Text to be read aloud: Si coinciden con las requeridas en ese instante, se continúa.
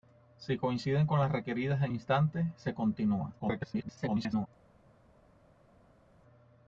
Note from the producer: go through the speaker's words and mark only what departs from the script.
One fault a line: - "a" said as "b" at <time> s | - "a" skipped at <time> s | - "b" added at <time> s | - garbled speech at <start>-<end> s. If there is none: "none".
- "ese" skipped at 1.9 s
- garbled speech at 3.4-4.5 s